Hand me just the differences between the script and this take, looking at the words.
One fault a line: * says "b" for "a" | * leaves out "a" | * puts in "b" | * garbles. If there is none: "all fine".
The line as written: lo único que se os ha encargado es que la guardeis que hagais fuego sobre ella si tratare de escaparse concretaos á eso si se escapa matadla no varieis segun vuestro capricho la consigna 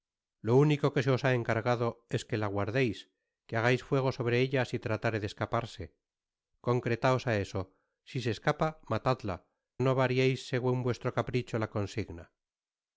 all fine